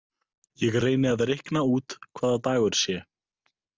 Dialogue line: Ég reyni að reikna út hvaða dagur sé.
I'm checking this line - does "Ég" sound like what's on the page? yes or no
yes